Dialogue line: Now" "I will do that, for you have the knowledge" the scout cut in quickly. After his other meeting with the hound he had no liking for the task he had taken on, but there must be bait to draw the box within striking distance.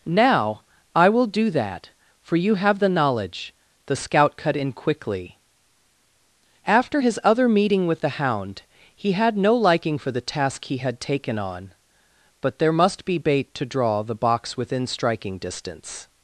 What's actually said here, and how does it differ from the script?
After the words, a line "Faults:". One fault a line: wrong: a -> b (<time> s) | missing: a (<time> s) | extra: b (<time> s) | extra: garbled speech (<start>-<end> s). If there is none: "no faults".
Now" "I will do that, for you have the knowledge" the scout cut in quickly. After his other meeting with the hound he had no liking for the task he had taken on, but there must be bait to draw the box within striking distance.
Faults:
no faults